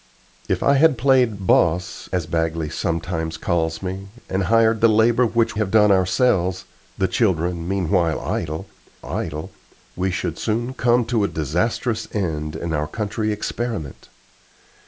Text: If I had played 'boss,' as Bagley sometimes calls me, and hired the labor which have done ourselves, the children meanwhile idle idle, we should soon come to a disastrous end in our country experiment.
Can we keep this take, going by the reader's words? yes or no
yes